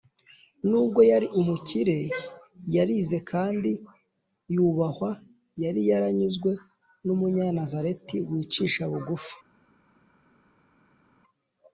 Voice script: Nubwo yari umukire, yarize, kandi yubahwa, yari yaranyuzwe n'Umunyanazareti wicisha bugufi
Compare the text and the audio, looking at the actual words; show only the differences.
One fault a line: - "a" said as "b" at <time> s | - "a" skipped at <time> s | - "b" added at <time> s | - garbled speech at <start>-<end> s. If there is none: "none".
none